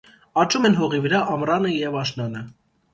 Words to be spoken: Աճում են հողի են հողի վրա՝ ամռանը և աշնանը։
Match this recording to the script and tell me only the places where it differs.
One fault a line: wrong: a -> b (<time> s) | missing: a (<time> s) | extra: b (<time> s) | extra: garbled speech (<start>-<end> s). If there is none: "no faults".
missing: են հողի (1.0 s)